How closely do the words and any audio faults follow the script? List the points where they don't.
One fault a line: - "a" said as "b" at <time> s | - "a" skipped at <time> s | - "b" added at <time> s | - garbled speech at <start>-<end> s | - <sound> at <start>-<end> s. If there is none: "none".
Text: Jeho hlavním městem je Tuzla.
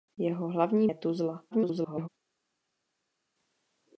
- "městem" skipped at 0.9 s
- garbled speech at 1.5-2.1 s